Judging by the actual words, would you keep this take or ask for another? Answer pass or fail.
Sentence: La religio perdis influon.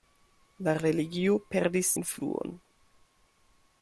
pass